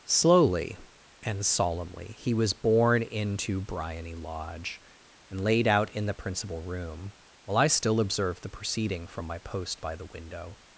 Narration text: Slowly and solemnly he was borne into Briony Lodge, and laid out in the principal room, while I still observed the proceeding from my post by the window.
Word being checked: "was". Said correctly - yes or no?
yes